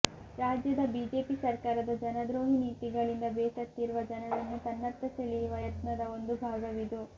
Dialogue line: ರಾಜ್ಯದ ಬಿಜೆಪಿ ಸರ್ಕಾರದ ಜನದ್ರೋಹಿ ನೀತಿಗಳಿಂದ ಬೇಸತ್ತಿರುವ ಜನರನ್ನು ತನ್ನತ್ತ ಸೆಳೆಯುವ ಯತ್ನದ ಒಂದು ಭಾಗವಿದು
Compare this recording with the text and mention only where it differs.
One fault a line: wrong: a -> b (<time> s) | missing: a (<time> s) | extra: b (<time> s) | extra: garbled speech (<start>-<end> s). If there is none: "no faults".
no faults